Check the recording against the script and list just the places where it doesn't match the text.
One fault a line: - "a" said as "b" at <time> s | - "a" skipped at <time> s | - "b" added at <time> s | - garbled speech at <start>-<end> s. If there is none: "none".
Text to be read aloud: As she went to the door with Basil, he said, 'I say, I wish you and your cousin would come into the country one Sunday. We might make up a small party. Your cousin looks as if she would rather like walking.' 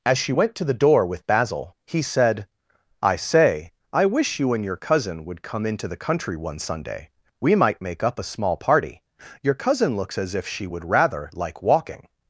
none